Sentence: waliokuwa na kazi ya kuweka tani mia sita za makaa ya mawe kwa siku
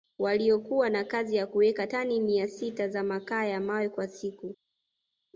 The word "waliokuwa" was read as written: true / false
true